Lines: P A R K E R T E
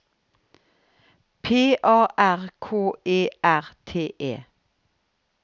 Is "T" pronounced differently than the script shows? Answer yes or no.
no